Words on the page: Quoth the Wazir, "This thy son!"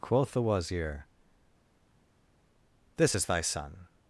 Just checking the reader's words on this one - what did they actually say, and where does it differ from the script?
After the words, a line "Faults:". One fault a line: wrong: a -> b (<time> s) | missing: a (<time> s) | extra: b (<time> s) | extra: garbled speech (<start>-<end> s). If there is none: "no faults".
Quoth the Wazir, "This is thy son!"
Faults:
extra: is (3.1 s)